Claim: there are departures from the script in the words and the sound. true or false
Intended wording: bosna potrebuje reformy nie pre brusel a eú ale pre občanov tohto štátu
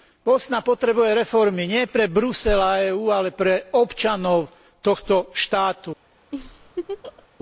true